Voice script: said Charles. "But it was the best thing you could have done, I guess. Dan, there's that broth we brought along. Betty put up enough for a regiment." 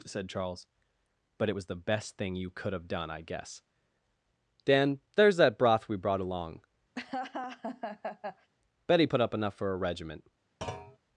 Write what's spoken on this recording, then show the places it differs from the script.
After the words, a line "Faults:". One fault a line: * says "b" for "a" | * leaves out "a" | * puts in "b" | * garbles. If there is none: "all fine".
said Charles. "But it was the best thing you could have done, I guess. Dan, there's that broth we brought along. Betty put up enough for a regiment."
Faults:
all fine